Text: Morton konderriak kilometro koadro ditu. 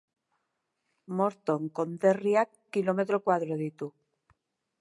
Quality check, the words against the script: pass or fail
pass